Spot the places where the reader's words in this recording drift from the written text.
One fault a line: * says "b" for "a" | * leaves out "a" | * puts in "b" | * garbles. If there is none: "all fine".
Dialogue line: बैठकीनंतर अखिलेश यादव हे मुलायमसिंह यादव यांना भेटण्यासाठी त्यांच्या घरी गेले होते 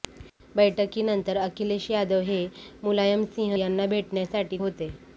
* leaves out "यादव"
* leaves out "त्यांच्या घरी गेले"